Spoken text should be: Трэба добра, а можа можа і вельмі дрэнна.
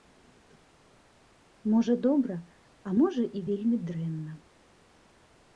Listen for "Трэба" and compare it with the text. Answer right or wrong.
wrong